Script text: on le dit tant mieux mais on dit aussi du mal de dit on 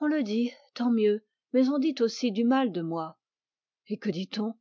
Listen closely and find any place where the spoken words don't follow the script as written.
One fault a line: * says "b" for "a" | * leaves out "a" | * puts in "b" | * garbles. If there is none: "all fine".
* puts in "moi et que"